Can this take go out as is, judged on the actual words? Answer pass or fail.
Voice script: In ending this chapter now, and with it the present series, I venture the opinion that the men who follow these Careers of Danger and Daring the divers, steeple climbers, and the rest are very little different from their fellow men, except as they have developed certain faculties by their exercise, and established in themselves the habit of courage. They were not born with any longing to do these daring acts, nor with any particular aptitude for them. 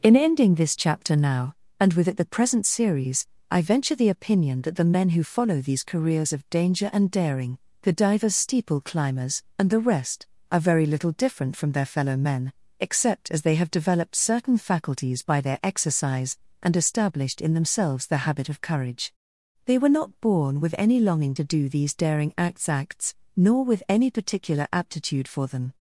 fail